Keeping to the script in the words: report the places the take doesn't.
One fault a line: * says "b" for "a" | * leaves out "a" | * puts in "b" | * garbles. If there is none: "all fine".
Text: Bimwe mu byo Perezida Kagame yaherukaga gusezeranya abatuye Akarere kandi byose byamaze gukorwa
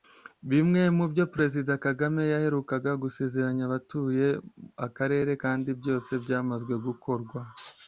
all fine